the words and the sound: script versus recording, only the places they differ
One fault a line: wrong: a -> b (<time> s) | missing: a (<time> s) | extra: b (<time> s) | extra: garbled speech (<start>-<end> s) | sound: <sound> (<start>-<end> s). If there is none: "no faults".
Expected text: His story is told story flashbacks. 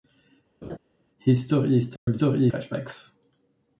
sound: laugh (0.6-0.8 s)
sound: dropout (2.0-2.1 s)